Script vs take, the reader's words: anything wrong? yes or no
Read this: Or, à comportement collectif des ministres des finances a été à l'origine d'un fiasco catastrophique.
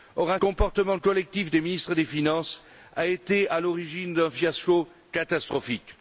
no